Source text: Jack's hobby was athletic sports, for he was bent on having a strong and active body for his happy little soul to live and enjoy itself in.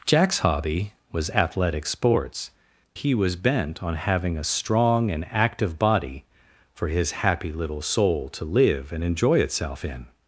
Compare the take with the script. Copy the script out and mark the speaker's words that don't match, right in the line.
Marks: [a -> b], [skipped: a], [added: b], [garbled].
Jack's hobby was athletic sports, [skipped: for] he was bent on having a strong and active body for his happy little soul to live and enjoy itself in.